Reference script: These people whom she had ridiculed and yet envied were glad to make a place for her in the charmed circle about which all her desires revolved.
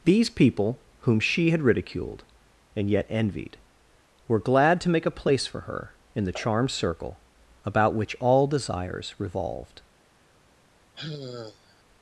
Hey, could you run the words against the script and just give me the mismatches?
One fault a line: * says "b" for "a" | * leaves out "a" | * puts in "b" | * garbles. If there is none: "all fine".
* leaves out "her"